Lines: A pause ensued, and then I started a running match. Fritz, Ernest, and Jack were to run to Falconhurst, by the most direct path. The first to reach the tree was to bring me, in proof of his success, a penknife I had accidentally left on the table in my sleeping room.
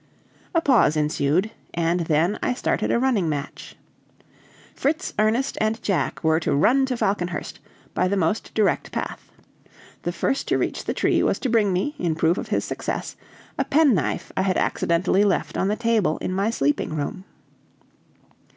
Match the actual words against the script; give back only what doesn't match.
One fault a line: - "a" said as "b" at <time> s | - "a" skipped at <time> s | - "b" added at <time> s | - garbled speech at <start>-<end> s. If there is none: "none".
none